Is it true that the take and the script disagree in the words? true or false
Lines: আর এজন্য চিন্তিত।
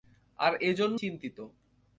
false